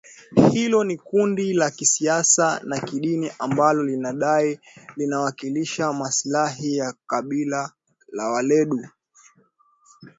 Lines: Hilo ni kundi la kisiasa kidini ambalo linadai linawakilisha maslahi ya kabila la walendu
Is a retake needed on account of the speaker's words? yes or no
yes